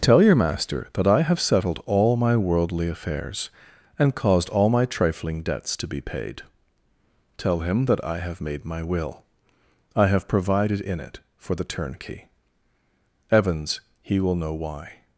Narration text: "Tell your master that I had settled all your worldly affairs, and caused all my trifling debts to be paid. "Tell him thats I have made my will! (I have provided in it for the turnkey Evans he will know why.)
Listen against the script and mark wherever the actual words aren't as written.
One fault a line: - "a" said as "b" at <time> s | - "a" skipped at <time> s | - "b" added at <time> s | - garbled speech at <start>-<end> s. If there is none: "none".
- "had" said as "have" at 1.2 s
- "your" said as "my" at 2.2 s
- "thats" said as "that" at 7.8 s